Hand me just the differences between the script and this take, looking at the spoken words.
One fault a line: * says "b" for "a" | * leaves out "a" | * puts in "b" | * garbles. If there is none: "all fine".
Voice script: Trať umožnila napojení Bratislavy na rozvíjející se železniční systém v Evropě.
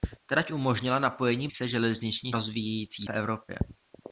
* leaves out "Bratislavy na rozvíjející"
* says "rozvíjející" for "systém"